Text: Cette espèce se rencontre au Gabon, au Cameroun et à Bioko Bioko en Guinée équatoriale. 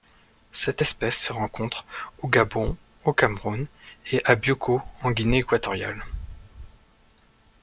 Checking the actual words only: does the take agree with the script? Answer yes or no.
no